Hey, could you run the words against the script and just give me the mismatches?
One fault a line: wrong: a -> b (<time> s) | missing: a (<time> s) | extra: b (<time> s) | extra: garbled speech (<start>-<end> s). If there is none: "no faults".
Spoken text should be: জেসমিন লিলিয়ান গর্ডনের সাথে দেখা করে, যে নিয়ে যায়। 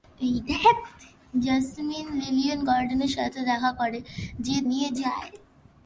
no faults